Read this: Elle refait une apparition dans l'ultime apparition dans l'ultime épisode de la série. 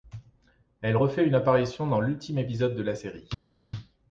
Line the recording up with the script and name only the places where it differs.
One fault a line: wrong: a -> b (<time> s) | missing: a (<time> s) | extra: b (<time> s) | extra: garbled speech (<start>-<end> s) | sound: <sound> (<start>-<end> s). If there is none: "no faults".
missing: apparition dans l'ultime (2.4 s)